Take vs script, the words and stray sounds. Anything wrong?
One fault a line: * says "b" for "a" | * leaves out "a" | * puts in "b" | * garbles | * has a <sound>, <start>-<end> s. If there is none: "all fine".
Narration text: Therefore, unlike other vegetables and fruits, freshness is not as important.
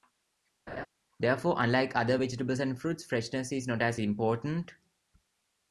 * has a laugh, 0.7-0.9 s